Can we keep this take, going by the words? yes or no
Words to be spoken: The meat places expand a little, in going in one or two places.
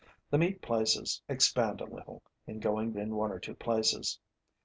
yes